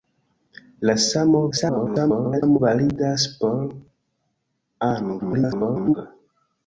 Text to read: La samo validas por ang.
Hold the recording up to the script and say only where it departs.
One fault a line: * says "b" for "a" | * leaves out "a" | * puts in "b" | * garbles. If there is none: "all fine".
* garbles
* garbles